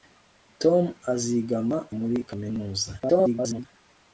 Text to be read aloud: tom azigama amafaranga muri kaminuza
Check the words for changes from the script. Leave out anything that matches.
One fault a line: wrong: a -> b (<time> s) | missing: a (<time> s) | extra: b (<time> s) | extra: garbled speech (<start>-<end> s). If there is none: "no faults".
missing: amafaranga (1.8 s)
extra: garbled speech (3.0-3.7 s)